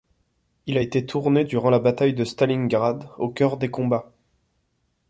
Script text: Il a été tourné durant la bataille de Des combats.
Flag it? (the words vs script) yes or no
yes